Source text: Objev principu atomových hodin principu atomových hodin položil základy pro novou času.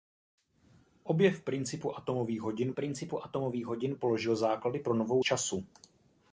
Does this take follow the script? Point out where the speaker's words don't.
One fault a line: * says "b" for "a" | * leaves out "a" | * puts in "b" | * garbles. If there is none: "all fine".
all fine